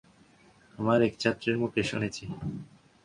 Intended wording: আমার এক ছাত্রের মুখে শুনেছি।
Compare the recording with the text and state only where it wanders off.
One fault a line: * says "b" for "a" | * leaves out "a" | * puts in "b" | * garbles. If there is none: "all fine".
all fine